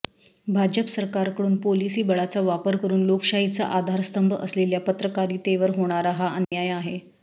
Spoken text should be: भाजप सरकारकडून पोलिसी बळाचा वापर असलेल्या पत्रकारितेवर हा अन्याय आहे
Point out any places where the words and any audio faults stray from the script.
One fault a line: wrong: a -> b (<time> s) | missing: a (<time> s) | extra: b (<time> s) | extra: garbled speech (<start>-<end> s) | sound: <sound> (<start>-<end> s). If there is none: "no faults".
extra: करून लोकशाहीचा आधारस्तंभ (2.7 s)
extra: होणारा (5.8 s)
sound: dropout (6.4-6.5 s)